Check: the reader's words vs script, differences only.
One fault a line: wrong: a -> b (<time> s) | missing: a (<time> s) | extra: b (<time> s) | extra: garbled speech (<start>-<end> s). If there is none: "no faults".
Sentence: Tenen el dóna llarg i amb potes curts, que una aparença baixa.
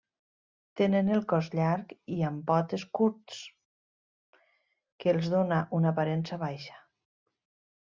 wrong: dóna -> cos (1.3 s)
extra: els dóna (5.2 s)